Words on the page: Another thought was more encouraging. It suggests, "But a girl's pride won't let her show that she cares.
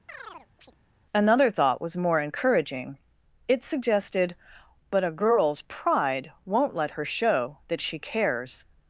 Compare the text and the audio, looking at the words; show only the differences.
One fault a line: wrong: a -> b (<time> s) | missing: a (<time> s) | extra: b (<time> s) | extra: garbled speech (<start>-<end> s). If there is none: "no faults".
wrong: suggests -> suggested (3.6 s)